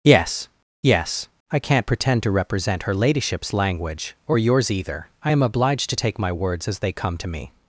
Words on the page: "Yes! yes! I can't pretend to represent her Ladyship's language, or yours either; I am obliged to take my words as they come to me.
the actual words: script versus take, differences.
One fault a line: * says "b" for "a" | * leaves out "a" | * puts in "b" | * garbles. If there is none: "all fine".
all fine